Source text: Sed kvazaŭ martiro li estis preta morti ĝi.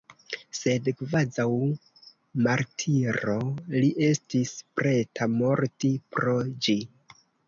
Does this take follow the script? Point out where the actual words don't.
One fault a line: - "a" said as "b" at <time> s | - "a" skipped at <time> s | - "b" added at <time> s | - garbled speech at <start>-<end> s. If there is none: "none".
- "pro" added at 6.2 s